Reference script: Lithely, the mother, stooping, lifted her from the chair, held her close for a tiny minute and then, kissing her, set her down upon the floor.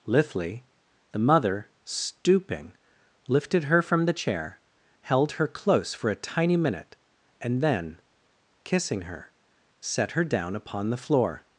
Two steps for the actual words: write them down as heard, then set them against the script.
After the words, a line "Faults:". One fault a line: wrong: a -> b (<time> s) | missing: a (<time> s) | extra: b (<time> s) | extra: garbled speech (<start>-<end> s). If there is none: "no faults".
Lithely, the mother, stooping, lifted her from the chair, held her close for a tiny minute and then, kissing her, set her down upon the floor.
Faults:
no faults